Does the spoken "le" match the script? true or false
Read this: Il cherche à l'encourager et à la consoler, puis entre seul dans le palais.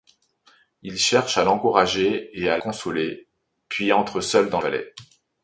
false